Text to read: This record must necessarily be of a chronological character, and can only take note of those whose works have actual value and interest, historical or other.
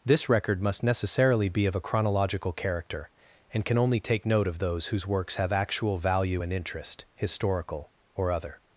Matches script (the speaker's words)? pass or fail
pass